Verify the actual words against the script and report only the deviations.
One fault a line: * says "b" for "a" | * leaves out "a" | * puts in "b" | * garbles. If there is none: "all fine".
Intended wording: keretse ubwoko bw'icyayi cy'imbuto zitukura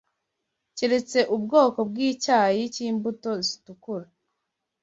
all fine